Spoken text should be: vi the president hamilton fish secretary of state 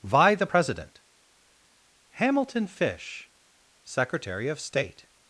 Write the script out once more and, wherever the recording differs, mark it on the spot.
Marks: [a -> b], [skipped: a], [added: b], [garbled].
vi the president hamilton fish secretary of state